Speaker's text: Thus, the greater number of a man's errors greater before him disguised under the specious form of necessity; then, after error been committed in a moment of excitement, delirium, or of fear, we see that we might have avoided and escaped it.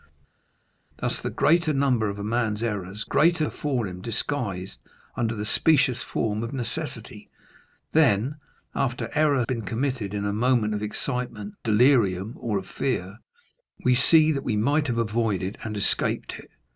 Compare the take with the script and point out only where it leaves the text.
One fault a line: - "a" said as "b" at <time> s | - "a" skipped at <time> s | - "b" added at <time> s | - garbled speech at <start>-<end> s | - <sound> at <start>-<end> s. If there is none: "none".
none